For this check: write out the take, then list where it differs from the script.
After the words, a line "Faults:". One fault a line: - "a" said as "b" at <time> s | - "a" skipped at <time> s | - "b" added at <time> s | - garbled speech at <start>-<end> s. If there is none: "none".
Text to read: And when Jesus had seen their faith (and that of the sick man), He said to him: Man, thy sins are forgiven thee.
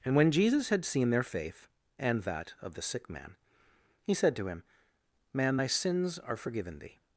And when Jesus had seen their faith (and that of the sick man), He said to him: Man, thy sins are forgiven thee.
Faults:
none